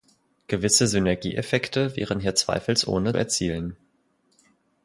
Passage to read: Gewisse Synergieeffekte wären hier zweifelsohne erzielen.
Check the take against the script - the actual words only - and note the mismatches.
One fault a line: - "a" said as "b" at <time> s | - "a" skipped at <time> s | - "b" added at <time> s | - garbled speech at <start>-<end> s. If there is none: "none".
none